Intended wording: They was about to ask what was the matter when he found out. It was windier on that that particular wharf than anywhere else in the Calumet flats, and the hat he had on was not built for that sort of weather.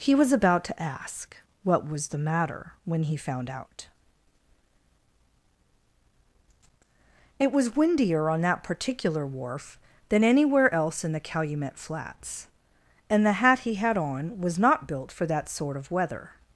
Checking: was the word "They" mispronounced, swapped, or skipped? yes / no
yes